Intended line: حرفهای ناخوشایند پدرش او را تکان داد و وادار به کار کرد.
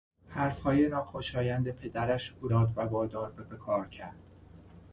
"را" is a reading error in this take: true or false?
true